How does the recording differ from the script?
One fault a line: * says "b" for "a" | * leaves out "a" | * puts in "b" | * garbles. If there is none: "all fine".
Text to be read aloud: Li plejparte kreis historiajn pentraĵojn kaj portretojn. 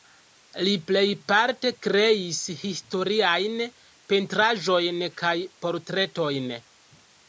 all fine